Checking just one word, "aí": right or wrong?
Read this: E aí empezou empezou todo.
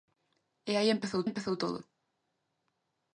right